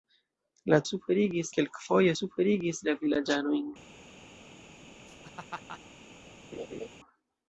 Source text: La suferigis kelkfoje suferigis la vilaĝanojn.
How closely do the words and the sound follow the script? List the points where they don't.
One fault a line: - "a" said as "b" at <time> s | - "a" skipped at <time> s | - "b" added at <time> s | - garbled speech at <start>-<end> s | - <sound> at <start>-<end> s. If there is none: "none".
- laugh at 5.1-5.8 s
- laugh at 6.5-6.9 s